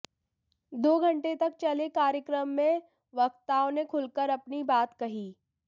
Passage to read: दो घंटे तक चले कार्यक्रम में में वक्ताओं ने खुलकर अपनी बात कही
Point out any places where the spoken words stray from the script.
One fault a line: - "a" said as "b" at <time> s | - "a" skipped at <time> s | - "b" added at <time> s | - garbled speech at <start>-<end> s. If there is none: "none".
- "में" skipped at 2.8 s